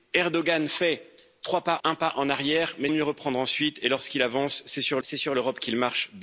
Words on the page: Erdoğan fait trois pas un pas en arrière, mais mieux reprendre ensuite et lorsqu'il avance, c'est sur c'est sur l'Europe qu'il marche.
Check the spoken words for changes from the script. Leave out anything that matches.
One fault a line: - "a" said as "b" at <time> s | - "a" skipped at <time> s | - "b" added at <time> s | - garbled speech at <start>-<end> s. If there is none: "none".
none